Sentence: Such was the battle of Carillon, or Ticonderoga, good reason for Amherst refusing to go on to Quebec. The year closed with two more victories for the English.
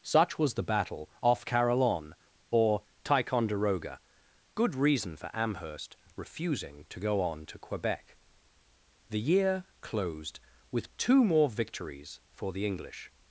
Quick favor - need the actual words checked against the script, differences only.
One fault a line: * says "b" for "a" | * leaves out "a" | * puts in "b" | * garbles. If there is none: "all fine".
* says "off" for "of"